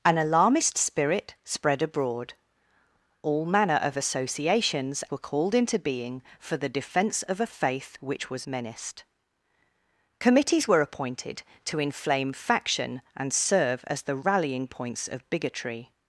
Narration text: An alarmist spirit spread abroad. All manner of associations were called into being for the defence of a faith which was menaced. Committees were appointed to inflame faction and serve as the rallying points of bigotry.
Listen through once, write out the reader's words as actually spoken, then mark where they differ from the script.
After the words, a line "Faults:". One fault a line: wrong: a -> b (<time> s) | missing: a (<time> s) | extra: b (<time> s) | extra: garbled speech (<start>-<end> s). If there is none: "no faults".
An alarmist spirit spread abroad. All manner of associations were called into being for the defence of a faith which was menaced. Committees were appointed to inflame faction and serve as the rallying points of bigotry.
Faults:
no faults